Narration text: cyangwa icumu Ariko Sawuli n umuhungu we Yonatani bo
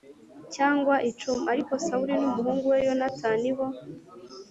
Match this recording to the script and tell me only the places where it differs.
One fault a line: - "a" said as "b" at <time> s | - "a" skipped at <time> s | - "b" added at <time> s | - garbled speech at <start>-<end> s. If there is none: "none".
none